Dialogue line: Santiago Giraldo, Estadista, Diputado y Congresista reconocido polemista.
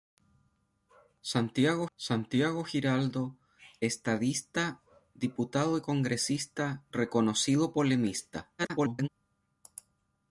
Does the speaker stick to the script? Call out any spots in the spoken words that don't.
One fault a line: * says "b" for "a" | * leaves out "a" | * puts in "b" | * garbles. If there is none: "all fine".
* puts in "santiago"
* garbles